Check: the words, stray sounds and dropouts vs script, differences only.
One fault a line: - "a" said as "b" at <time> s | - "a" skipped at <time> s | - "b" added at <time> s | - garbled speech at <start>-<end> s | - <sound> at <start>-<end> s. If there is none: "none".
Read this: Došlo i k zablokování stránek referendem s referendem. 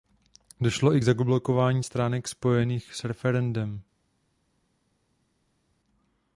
- "referendem" said as "spojených" at 2.3 s